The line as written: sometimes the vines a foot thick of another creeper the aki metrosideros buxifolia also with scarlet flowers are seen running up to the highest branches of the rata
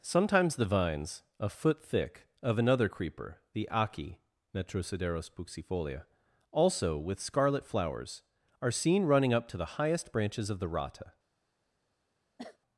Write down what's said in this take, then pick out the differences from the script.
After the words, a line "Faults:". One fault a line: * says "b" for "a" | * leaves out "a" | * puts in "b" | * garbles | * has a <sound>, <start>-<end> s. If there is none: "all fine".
sometimes the vines a foot thick of another creeper the aki metrosideros buxifolia also with scarlet flowers are seen running up to the highest branches of the rata
Faults:
* has a cough, 12.4-12.6 s